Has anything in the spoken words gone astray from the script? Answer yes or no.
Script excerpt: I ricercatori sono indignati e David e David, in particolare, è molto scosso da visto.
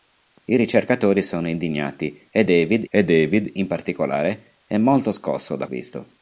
no